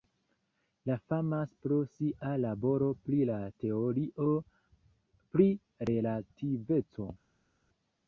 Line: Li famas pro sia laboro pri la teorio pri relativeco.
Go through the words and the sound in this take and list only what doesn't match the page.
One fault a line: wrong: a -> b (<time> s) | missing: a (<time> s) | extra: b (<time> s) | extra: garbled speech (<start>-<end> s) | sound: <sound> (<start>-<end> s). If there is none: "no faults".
no faults